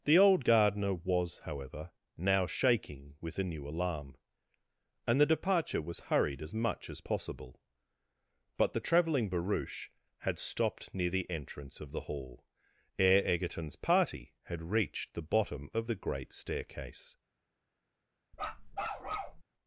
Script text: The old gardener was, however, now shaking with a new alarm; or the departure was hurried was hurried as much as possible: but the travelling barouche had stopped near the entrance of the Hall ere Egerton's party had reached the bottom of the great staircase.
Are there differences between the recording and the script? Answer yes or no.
yes